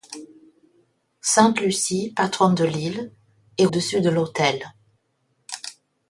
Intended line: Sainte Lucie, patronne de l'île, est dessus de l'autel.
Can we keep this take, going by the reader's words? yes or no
yes